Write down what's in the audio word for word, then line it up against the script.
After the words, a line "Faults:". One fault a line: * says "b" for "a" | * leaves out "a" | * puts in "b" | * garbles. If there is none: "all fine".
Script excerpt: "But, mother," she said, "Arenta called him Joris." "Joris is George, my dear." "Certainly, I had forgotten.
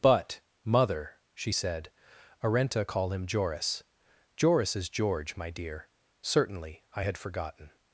"But, mother," she said, "Arenta call him Joris." "Joris is George, my dear." "Certainly, I had forgotten.
Faults:
* says "call" for "called"